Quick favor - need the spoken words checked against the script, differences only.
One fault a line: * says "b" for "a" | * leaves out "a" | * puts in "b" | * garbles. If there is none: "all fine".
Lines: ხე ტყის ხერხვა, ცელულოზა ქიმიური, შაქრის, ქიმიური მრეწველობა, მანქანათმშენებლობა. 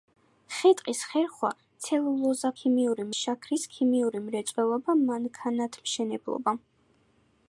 all fine